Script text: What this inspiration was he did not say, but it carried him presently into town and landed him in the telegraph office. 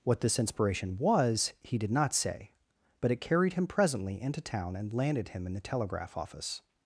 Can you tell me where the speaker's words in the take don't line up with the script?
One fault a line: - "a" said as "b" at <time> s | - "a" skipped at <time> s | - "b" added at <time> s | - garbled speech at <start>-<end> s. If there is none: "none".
none